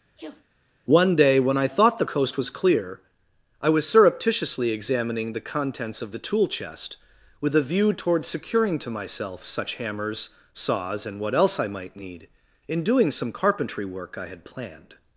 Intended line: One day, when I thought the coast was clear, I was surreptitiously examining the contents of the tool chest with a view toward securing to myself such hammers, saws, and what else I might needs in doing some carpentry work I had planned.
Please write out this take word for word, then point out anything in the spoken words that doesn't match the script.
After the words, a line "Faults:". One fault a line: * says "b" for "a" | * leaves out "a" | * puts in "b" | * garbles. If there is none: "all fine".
One day, when I thought the coast was clear, I was surreptitiously examining the contents of the tool chest with a view toward securing to myself such hammers, saws, and what else I might need in doing some carpentry work I had planned.
Faults:
* says "need" for "needs"